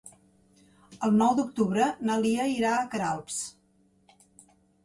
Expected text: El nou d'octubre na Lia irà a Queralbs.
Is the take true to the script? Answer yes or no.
yes